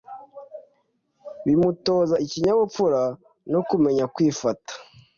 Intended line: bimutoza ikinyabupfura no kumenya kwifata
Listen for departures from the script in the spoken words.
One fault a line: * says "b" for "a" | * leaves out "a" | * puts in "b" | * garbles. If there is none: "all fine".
all fine